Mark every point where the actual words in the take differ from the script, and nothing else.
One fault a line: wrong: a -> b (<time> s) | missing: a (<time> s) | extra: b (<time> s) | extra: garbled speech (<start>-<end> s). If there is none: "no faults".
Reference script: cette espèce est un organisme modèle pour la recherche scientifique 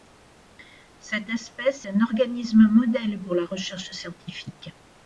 missing: est (1.9 s)